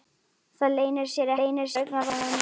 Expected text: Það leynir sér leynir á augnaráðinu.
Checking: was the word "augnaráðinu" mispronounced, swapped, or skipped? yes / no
no